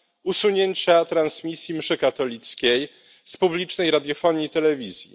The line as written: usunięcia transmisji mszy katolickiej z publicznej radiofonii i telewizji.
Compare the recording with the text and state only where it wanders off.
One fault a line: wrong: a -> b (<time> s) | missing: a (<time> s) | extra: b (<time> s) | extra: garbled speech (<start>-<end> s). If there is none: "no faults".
no faults